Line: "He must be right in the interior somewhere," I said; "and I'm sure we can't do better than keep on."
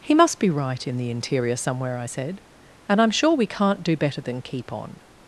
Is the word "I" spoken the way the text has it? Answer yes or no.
yes